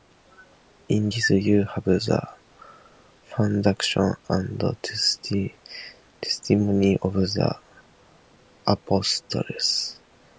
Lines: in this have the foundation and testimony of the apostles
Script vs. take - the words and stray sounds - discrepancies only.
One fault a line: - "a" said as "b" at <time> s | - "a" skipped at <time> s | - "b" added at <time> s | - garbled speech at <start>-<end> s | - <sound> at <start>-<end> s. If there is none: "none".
- "you" added at 1.3 s